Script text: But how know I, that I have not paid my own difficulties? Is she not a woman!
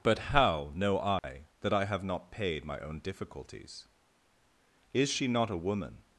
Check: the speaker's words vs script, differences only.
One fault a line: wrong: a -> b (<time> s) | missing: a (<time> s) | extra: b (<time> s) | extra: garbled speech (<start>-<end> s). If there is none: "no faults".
no faults